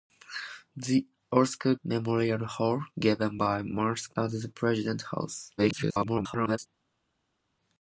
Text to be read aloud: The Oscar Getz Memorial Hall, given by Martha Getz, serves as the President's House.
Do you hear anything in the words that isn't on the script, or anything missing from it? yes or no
yes